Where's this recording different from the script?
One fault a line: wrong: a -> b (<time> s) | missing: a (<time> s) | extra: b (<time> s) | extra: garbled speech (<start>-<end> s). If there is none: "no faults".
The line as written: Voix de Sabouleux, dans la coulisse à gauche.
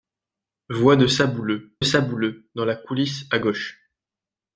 extra: Sabouleux (1.8 s)